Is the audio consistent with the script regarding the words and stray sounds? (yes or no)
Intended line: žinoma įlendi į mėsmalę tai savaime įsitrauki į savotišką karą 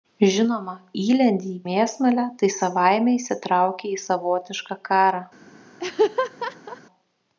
no